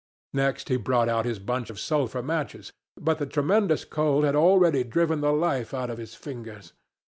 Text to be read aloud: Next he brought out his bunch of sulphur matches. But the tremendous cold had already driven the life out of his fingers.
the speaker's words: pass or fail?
pass